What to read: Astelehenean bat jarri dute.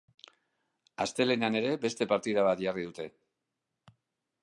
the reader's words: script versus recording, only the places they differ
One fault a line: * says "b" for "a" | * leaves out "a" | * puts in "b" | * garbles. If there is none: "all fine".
* puts in "ere beste partida"